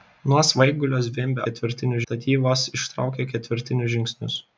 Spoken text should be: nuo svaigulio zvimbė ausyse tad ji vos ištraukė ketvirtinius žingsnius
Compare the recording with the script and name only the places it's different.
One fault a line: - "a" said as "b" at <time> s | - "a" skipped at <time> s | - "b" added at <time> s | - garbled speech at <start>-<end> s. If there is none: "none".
- "ausyse" said as "ketvirtinius" at 1.4 s